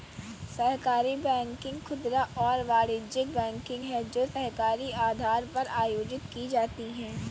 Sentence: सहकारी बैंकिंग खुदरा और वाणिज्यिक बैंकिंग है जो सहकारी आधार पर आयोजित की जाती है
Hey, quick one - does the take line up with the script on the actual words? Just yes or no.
yes